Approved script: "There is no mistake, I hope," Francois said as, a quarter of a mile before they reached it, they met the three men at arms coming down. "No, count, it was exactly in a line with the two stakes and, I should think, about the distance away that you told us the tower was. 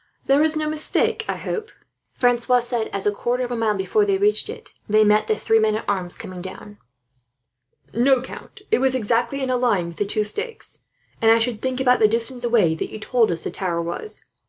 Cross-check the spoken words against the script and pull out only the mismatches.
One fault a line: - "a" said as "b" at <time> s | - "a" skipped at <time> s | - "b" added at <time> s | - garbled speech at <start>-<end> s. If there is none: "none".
none